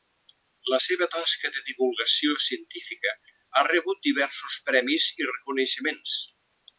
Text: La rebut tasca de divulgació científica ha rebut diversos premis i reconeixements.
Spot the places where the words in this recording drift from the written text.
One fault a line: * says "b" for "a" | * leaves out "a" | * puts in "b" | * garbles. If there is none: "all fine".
* says "seva" for "rebut"